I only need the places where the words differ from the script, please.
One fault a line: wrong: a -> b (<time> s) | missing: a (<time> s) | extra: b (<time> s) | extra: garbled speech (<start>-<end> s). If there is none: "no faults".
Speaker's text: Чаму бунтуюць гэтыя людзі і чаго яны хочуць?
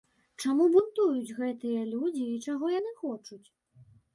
no faults